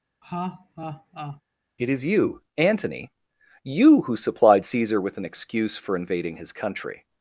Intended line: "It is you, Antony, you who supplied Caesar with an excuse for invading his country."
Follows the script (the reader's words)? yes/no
yes